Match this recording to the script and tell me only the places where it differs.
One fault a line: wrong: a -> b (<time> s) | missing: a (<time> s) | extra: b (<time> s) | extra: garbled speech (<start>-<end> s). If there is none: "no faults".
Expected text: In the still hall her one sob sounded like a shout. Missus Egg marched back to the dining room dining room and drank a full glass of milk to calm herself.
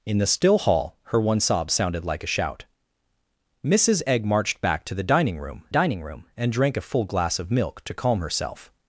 no faults